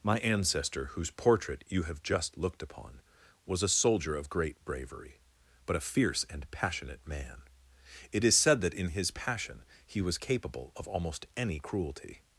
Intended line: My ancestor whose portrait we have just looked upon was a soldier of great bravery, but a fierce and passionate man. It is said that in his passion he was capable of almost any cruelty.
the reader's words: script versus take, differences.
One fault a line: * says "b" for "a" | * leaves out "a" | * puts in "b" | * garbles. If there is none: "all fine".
* says "you" for "we"